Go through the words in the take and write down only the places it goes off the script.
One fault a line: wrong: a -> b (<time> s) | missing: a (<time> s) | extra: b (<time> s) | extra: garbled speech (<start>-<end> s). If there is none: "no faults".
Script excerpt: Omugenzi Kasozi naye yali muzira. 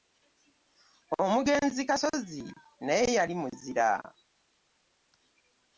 no faults